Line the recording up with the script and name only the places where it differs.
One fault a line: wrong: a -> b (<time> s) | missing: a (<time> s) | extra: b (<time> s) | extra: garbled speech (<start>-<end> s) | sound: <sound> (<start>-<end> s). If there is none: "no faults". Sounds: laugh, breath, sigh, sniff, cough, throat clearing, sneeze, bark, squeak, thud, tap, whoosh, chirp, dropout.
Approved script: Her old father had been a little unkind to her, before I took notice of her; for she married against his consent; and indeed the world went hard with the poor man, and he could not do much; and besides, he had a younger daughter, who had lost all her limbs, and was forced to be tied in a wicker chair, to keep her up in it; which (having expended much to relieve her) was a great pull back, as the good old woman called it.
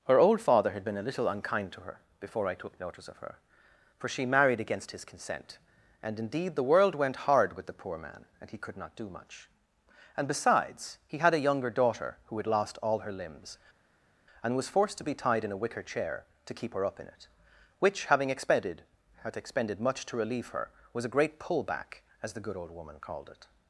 extra: had expended (19.2 s)